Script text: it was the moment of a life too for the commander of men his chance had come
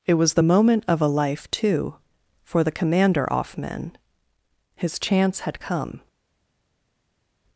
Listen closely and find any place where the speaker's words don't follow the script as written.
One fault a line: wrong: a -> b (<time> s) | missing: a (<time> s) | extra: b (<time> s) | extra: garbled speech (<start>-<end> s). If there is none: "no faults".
wrong: of -> off (3.3 s)